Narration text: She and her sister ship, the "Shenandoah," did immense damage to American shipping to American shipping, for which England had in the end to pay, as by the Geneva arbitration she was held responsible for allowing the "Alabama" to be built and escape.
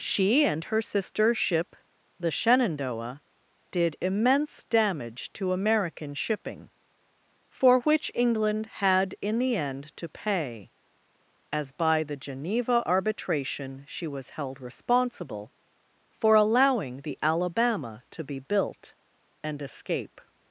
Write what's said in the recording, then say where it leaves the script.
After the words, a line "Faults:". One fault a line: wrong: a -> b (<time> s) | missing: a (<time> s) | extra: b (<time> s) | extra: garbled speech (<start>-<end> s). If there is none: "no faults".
She and her sister ship, the "Shenandoah," did immense damage to American shipping, for which England had in the end to pay, as by the Geneva arbitration she was held responsible for allowing the "Alabama" to be built and escape.
Faults:
missing: to American shipping (6.7 s)